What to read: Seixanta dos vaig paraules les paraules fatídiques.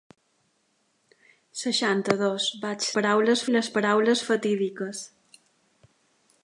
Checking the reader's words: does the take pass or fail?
pass